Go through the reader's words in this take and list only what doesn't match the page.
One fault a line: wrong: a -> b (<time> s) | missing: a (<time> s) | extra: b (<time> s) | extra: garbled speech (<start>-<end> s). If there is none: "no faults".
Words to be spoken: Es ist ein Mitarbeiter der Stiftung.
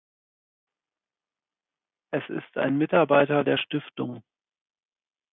no faults